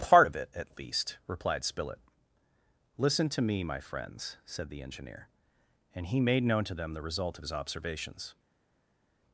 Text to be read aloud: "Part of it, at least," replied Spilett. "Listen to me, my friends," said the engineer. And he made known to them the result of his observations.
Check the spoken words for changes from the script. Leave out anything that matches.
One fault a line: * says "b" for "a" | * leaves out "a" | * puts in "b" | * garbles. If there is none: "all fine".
all fine